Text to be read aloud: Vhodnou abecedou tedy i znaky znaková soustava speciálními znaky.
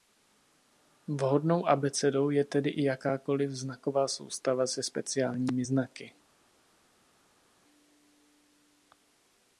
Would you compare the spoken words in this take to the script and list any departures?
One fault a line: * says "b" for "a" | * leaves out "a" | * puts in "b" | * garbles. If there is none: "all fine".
* puts in "je"
* says "jakákoliv" for "znaky"
* puts in "se"